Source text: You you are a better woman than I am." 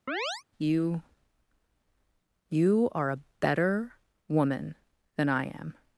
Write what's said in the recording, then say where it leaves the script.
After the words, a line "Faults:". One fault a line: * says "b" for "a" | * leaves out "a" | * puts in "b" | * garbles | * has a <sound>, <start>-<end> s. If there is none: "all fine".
You you are a better woman than I am."
Faults:
* has a chirp, 0.1-0.4 s